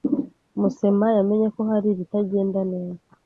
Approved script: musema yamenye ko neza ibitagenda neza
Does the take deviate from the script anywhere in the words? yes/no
yes